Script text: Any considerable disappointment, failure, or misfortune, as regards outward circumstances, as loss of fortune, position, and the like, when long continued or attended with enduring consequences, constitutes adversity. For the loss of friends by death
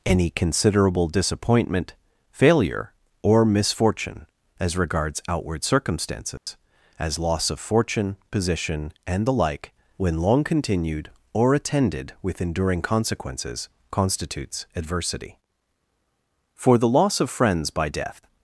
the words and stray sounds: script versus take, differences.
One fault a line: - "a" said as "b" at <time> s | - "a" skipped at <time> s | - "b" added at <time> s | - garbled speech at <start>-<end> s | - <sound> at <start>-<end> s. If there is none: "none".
- dropout at 6.4-6.5 s